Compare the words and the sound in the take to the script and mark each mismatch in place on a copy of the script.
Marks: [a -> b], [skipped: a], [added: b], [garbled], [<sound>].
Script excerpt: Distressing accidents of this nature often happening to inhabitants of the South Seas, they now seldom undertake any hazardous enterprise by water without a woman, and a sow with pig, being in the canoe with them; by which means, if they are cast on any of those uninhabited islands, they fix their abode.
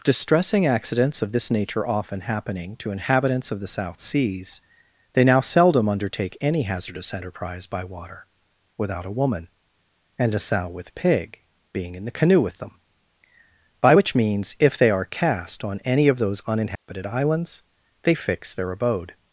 Distressing accidents of this nature often happening to inhabitants of the South Seas, they now seldom undertake any hazardous enterprise by water without a woman, and a sow with pig, being in the canoe with them; by which means, if they are cast on any of those uninhabited [dropout] islands, they fix their abode.